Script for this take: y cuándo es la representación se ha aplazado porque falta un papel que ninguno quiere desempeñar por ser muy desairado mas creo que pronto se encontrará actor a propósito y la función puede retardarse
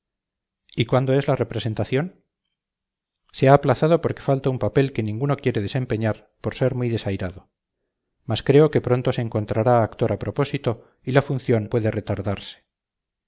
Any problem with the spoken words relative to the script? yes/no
no